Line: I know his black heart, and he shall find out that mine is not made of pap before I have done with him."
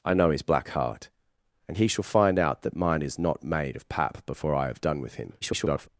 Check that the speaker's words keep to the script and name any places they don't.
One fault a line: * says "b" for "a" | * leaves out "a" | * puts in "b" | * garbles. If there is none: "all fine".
* garbles